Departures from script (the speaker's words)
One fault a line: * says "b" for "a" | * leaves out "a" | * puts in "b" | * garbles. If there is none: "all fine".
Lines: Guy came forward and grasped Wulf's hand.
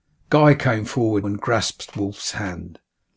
all fine